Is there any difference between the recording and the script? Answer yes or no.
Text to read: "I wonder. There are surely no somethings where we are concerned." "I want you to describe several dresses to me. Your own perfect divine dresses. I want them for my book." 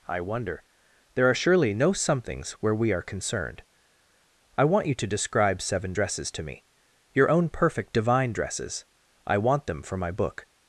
yes